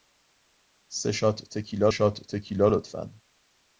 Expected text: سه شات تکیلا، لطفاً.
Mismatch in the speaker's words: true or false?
true